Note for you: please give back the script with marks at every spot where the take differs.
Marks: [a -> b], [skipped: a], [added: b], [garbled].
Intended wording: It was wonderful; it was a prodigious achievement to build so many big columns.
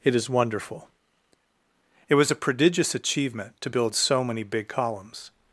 It [was -> is] wonderful; it was a prodigious achievement to build so many big columns.